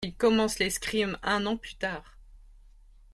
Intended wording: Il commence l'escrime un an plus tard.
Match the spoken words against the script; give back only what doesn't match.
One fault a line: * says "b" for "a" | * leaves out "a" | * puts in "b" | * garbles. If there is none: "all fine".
all fine